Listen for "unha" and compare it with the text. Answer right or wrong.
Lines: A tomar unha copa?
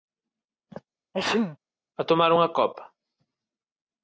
right